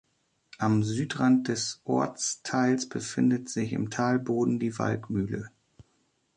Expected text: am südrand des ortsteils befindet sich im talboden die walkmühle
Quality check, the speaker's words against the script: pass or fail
pass